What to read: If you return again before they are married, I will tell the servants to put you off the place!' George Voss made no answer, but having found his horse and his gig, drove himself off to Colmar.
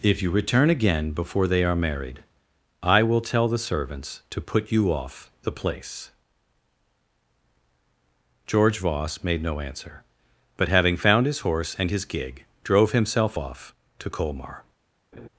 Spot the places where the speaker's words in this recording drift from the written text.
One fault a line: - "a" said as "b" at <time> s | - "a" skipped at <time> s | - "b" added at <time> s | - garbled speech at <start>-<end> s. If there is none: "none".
none